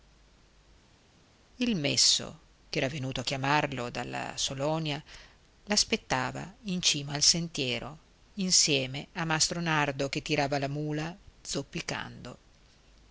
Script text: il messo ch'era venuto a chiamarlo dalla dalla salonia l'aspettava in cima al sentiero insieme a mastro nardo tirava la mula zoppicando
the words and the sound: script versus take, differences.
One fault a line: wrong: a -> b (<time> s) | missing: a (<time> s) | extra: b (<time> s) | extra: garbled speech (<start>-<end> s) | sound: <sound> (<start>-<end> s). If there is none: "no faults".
missing: dalla (4.3 s)
extra: che (10.1 s)